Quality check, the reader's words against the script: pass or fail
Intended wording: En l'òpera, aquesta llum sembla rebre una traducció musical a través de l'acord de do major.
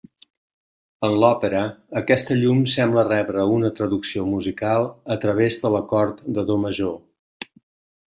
pass